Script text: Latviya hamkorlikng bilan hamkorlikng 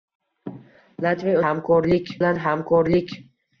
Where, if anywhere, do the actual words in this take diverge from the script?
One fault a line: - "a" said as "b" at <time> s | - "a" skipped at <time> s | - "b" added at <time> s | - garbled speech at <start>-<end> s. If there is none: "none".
none